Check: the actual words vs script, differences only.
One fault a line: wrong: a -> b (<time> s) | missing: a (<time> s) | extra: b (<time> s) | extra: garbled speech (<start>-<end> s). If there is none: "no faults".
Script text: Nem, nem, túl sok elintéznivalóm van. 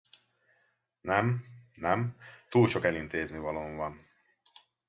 no faults